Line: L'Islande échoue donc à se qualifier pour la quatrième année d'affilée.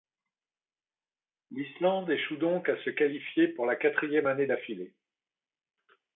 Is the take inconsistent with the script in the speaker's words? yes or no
no